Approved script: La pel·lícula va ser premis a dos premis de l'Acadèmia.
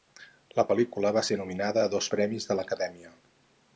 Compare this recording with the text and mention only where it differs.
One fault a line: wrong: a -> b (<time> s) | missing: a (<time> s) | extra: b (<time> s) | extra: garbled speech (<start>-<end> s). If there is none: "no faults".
wrong: premis -> nominada (1.4 s)